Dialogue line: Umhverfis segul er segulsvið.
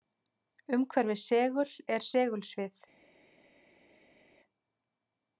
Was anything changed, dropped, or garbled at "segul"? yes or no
no